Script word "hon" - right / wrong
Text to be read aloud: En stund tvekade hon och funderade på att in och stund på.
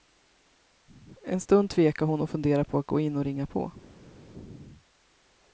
right